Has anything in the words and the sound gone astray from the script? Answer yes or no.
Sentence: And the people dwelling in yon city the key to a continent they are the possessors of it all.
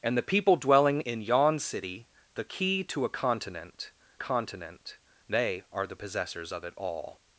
yes